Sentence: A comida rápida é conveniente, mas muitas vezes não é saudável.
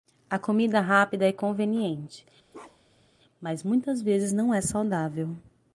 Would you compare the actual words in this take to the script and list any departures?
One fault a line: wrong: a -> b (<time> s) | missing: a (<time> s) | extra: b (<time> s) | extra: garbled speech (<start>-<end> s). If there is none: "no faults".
no faults